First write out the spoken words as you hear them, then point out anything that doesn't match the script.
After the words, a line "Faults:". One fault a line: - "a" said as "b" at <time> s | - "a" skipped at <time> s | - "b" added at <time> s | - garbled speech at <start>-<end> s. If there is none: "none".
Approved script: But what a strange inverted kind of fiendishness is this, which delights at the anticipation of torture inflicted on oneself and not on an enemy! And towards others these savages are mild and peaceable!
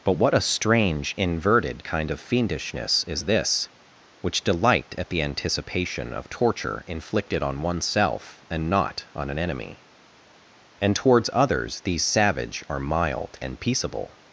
But what a strange inverted kind of fiendishness is this, which delight at the anticipation of torture inflicted on oneself and not on an enemy! And towards others these savage are mild and peaceable!
Faults:
- "delights" said as "delight" at 4.4 s
- "savages" said as "savage" at 12.0 s